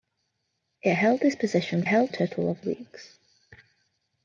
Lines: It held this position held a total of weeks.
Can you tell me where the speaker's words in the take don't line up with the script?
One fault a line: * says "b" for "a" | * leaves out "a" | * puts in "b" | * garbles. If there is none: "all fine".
all fine